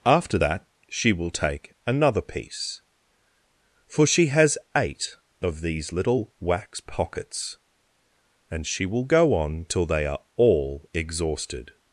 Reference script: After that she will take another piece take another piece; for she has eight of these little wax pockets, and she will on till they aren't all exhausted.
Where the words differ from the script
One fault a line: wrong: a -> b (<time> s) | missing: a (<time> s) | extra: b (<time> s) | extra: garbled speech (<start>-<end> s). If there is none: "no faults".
missing: take another piece (2.8 s)
extra: go (9.0 s)
wrong: aren't -> are (10.1 s)